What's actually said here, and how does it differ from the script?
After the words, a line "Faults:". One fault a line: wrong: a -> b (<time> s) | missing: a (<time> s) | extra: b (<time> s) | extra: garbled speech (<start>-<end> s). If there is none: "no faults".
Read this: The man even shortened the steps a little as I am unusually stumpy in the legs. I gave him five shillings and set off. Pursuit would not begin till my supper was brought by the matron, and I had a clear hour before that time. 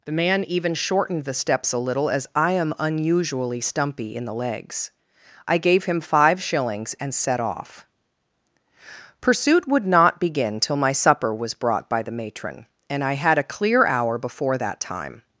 The man even shortened the steps a little as I am unusually stumpy in the legs. I gave him five shillings and set off. Pursuit would not begin till my supper was brought by the matron, and I had a clear hour before that time.
Faults:
no faults